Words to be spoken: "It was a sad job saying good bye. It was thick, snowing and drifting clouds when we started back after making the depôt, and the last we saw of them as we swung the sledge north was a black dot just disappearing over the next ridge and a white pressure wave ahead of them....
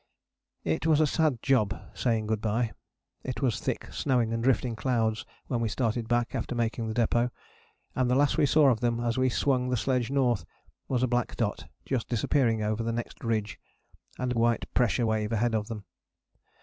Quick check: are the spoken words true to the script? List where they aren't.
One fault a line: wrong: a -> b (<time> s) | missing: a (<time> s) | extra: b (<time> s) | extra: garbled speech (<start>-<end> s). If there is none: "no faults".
no faults